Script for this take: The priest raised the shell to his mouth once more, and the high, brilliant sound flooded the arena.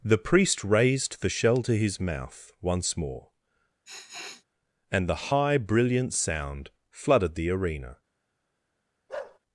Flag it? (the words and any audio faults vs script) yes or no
yes